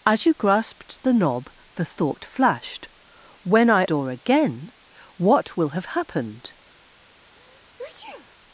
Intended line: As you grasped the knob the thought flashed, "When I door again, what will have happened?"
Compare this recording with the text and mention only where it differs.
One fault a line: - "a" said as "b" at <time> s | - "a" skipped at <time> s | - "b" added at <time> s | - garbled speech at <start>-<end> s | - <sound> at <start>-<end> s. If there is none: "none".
- sneeze at 7.2-8.4 s